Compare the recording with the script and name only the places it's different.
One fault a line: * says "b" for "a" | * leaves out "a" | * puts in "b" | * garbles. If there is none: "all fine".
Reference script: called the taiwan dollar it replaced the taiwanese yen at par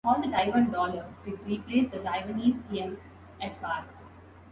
all fine